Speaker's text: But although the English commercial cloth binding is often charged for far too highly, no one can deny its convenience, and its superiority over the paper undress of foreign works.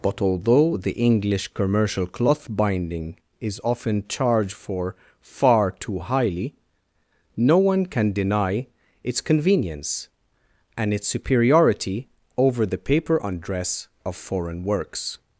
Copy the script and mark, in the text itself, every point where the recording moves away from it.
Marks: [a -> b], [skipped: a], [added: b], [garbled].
But although the English commercial cloth binding is often charged for far too highly, no one can deny its convenience, and its superiority over the paper undress of foreign works.